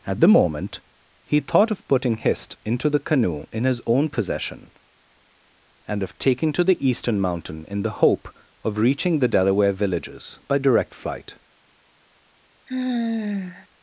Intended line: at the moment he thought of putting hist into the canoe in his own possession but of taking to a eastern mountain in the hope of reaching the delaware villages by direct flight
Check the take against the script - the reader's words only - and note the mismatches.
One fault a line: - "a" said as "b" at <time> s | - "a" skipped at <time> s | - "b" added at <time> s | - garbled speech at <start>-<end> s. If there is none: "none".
- "but" said as "and" at 5.9 s
- "a" said as "the" at 6.6 s